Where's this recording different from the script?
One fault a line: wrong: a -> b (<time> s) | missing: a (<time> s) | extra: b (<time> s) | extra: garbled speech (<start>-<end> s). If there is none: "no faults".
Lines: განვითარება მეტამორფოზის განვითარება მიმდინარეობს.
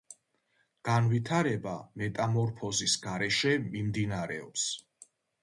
wrong: განვითარება -> გარეშე (3.0 s)